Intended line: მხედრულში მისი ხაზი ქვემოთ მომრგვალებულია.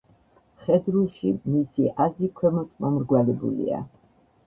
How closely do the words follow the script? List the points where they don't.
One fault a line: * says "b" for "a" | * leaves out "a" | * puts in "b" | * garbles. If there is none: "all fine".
all fine